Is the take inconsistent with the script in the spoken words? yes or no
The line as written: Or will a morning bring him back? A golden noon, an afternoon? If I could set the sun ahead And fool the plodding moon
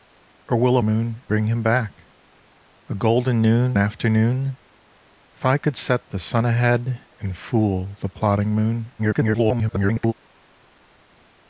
yes